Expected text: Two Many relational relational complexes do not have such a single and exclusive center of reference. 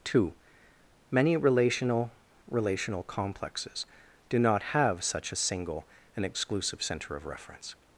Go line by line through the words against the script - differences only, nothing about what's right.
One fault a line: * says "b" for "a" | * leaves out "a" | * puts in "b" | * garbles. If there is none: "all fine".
all fine